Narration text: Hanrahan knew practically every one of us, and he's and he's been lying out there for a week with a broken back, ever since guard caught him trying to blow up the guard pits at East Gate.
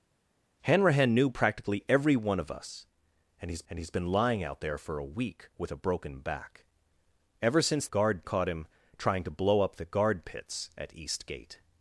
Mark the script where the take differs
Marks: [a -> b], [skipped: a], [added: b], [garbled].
Hanrahan knew practically every one of us, and he's and he's been lying out there for a week with a broken back, ever since guard caught him trying to blow up the guard pits at East Gate.